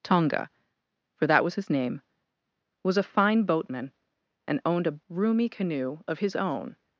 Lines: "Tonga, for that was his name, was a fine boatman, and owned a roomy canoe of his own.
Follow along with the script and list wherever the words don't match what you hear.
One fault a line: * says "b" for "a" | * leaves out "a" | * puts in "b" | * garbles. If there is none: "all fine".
all fine